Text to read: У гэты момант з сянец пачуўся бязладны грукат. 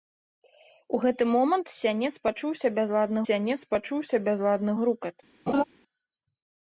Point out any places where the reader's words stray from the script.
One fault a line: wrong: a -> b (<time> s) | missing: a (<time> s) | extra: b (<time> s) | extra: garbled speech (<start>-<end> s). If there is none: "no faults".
extra: сянец пачуўся бязладны (3.3 s)